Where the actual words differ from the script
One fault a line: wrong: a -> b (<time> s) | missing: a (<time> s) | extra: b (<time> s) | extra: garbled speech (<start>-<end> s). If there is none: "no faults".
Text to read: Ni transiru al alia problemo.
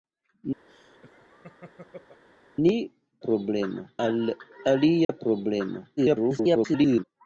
wrong: transiru -> problemo (3.3 s)
extra: garbled speech (6.0-7.0 s)